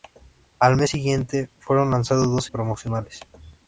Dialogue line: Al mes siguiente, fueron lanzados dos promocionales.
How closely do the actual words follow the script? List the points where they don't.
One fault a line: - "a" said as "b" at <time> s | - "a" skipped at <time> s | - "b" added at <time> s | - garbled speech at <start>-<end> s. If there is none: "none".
none